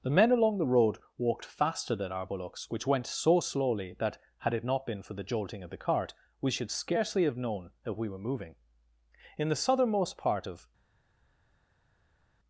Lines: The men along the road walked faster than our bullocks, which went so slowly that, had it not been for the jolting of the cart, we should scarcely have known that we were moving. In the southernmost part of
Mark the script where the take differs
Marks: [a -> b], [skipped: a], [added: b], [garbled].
The men along the road walked faster than our bullocks, which went so slowly that, had it not been for the jolting of the cart, we should scarcely have known that we were moving. In the southernmost part of